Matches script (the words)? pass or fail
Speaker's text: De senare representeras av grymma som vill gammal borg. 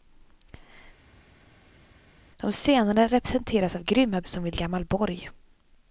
pass